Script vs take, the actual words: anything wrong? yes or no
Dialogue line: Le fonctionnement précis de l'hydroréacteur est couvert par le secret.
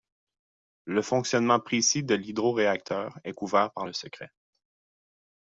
no